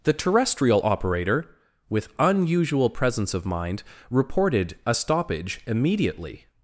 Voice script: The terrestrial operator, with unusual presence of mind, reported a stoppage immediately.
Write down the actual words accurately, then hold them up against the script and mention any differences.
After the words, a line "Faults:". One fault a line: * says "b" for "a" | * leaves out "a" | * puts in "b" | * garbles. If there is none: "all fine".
The terrestrial operator, with unusual presence of mind, reported a stoppage immediately.
Faults:
all fine